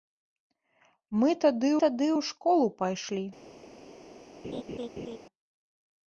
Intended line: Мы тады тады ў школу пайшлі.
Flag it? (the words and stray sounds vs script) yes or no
yes